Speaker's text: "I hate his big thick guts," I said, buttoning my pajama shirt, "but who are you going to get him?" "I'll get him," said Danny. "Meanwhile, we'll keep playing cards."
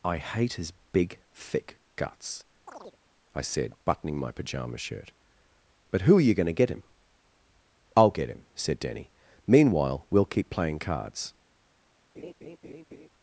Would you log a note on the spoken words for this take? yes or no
no